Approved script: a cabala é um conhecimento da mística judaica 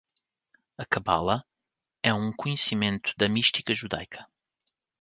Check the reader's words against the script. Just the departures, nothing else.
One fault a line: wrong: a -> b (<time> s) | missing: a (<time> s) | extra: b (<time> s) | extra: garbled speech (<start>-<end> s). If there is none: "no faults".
no faults